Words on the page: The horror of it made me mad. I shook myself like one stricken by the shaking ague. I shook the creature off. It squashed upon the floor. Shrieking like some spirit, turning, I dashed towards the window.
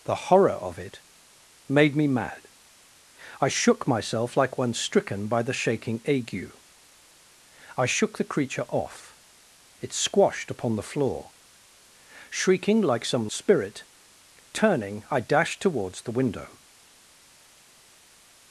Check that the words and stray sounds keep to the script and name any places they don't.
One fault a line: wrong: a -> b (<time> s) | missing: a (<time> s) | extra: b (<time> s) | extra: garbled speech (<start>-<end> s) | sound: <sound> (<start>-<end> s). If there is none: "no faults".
no faults